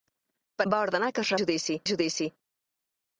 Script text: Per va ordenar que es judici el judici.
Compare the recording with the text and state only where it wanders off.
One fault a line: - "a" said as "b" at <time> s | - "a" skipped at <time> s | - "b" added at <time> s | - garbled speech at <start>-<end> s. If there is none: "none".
none